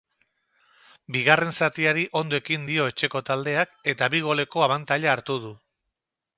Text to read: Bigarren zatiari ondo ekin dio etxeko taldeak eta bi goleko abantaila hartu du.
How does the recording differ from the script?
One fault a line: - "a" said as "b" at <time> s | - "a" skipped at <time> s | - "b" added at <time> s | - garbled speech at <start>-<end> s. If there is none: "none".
none